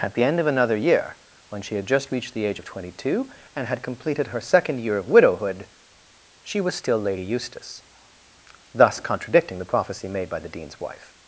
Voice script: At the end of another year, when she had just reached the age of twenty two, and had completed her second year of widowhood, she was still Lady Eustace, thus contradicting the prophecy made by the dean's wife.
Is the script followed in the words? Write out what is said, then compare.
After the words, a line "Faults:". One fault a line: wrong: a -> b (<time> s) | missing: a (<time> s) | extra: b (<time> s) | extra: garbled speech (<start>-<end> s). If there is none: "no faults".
At the end of another year, when she had just reached the age of twenty two, and had completed her second year of widowhood, she was still Lady Eustace, thus contradicting the prophecy made by the dean's wife.
Faults:
no faults